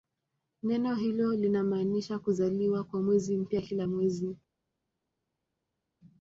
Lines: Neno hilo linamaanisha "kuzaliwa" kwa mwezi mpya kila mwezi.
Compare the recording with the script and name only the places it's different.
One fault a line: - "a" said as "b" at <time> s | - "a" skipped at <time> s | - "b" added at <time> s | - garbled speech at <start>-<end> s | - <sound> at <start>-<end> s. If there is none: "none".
none